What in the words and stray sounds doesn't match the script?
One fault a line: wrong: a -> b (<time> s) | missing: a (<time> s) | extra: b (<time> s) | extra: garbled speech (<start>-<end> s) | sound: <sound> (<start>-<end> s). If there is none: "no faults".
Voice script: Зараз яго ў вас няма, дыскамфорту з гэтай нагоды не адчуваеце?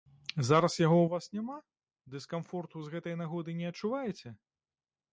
no faults